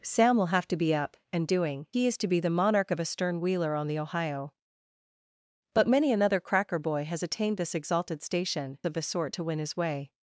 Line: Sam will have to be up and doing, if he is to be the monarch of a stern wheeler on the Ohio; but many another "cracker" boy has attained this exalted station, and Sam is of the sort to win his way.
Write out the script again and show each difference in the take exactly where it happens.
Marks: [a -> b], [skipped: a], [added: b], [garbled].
Sam will have to be up and doing, [skipped: if] he is to be the monarch of a stern wheeler on the Ohio; but many another "cracker" boy has attained this exalted station, [skipped: and Sam is] of the sort to win his way.